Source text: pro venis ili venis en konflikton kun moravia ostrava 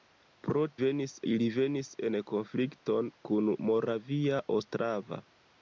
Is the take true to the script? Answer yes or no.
yes